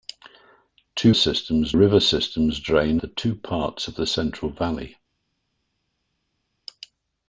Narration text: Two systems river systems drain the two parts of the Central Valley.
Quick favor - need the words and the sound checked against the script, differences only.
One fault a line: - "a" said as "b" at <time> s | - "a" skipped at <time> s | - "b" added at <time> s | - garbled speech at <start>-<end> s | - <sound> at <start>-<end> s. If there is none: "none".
none